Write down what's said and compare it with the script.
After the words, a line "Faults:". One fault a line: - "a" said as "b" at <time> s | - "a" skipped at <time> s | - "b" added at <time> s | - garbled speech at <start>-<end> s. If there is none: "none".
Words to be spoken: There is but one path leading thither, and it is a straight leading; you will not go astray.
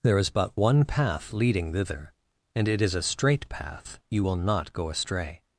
There is but one path leading thither, and it is a straight path; you will not go astray.
Faults:
- "leading" said as "path" at 3.5 s